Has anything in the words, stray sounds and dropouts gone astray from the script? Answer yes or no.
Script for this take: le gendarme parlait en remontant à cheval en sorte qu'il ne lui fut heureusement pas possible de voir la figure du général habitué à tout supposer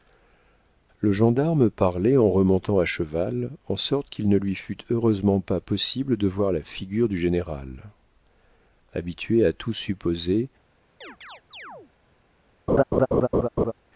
yes